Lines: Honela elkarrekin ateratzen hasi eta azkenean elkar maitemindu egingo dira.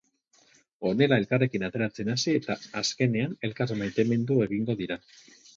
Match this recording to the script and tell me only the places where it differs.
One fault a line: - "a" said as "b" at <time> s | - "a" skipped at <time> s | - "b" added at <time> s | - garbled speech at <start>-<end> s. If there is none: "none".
none